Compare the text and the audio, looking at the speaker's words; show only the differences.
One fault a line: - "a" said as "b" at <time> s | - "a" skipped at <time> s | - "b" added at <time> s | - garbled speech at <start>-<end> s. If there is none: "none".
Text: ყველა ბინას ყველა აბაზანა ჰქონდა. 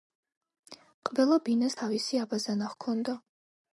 - "ყველა" said as "თავისი" at 1.8 s